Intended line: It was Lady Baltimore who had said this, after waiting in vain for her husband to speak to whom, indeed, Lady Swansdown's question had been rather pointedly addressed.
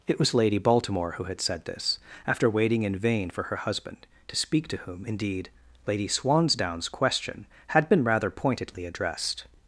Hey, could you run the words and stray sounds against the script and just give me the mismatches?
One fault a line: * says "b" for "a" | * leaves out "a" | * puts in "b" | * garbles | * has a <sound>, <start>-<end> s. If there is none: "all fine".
all fine